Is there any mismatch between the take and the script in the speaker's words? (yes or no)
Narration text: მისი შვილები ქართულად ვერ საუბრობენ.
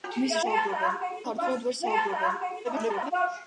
yes